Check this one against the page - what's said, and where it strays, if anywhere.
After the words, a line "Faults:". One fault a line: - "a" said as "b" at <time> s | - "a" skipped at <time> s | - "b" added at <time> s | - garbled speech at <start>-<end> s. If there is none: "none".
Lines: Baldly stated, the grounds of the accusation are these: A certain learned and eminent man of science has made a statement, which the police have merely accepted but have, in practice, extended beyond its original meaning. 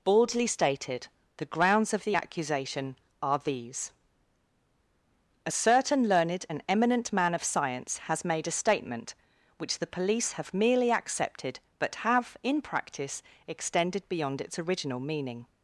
Baldly stated, the grounds of the accusation are these: A certain learned and eminent man of science has made a statement, which the police have merely accepted but have, in practice, extended beyond its original meaning.
Faults:
none